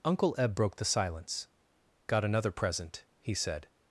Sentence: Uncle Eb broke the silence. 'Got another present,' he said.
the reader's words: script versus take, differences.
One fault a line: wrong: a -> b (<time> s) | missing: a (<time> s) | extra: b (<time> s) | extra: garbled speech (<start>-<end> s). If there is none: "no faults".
no faults